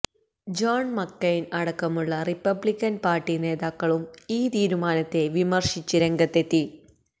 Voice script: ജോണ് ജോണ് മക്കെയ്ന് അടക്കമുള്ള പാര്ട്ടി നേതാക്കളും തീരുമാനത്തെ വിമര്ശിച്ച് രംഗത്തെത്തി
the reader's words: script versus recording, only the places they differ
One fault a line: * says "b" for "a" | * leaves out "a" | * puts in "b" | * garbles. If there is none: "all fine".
* leaves out "ജോണ്"
* puts in "റിപ്പബ്ലിക്കന്"
* puts in "ഈ"